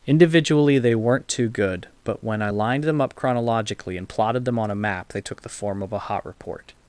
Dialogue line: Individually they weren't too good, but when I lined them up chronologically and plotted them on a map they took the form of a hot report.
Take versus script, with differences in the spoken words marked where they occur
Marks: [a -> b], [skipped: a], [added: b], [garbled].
Individually they weren't too good, but when I lined them up chronologically and plotted them on a map they took the form of a hot report.